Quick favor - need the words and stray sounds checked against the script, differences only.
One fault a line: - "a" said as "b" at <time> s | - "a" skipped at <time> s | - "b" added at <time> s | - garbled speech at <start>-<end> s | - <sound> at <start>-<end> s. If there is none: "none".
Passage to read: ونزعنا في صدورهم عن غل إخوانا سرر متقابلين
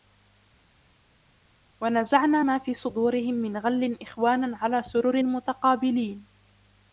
- "ما" added at 2.4 s
- "عن" said as "من" at 3.3 s
- "على" added at 4.6 s